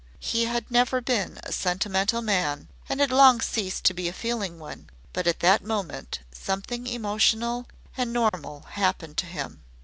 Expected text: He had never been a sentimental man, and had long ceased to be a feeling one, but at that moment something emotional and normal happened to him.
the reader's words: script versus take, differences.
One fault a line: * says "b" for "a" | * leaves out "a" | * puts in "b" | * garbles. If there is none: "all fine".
all fine